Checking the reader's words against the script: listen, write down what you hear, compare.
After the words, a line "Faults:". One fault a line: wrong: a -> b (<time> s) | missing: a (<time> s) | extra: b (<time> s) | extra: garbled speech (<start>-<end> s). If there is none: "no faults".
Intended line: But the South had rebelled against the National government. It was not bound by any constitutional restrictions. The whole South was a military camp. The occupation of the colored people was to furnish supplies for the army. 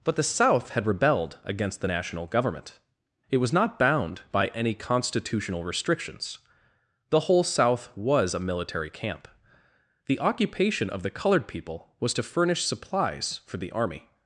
But the South had rebelled against the National government. It was not bound by any constitutional restrictions. The whole South was a military camp. The occupation of the colored people was to furnish supplies for the army.
Faults:
no faults